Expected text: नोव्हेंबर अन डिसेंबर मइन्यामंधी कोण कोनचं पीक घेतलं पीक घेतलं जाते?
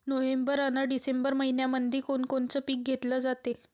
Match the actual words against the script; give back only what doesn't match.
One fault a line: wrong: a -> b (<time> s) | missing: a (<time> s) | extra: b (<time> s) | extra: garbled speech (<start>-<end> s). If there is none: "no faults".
missing: पीक घेतलं (3.2 s)